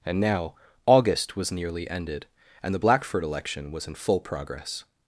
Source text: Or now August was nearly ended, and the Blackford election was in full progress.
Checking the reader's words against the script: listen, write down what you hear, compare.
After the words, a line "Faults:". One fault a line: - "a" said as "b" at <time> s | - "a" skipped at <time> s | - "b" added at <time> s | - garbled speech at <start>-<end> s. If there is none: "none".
And now August was nearly ended, and the Blackford election was in full progress.
Faults:
- "Or" said as "And" at 0.1 s